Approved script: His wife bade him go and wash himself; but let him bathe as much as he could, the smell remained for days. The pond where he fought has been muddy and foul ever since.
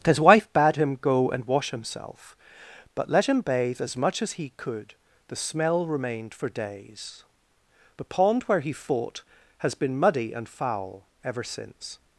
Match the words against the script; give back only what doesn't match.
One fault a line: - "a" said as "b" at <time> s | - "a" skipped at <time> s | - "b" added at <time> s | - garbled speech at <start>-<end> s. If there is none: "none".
none